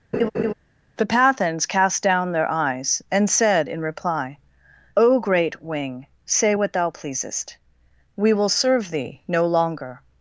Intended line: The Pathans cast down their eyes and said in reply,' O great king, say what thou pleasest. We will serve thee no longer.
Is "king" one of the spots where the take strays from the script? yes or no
yes